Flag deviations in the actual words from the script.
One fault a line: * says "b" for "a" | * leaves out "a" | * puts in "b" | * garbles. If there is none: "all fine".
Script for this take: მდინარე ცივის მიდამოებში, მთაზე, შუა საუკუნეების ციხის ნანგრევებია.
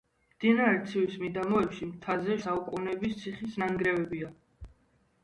* leaves out "შუა"